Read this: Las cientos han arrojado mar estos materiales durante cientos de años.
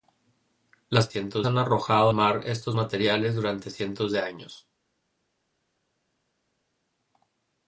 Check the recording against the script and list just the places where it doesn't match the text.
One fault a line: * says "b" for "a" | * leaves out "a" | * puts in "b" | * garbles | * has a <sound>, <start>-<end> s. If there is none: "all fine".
all fine